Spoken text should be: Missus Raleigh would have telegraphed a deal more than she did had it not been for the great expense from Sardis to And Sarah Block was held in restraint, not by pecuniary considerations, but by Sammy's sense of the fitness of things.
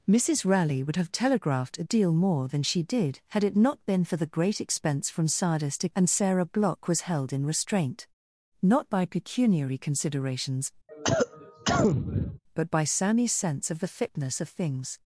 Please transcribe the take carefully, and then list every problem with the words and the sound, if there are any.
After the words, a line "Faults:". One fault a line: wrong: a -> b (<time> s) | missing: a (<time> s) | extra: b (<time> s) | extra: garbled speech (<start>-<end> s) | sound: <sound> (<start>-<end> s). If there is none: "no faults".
Missus Raleigh would have telegraphed a deal more than she did had it not been for the great expense from Sardis to And Sarah Block was held in restraint, not by pecuniary considerations, but by Sammy's sense of the fitness of things.
Faults:
sound: cough (10.9-12.4 s)